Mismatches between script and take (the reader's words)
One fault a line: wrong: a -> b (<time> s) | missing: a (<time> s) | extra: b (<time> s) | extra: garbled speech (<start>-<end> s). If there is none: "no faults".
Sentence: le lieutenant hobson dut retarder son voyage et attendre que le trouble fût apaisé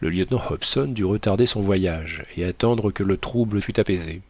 no faults